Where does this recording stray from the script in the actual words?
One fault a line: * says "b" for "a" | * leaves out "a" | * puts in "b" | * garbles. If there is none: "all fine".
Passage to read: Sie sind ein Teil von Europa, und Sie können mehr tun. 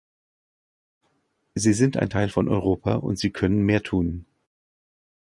all fine